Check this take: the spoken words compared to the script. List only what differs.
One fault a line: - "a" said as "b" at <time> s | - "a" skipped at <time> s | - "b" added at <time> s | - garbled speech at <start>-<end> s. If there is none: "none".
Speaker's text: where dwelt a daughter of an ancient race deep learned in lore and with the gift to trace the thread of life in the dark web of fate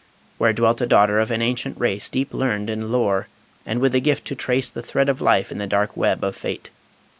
none